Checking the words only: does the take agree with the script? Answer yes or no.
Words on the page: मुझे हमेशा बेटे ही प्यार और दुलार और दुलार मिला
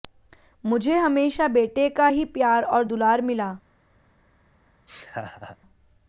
no